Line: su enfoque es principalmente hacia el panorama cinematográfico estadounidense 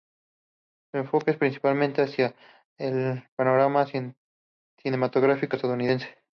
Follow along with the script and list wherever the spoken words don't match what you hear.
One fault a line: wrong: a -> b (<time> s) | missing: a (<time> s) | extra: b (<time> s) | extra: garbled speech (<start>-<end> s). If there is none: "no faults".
no faults